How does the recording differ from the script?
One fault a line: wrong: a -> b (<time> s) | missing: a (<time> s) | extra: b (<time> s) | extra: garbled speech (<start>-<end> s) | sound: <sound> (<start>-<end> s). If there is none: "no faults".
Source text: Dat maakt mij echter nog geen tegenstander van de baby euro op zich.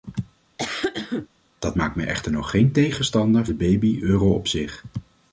sound: cough (0.6-1.3 s)
missing: van (3.5 s)